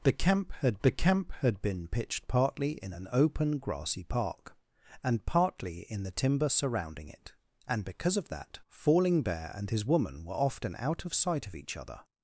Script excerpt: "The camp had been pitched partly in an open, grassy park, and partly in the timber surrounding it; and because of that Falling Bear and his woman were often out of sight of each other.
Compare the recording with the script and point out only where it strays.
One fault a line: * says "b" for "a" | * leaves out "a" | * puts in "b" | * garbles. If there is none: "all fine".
* puts in "the camp had"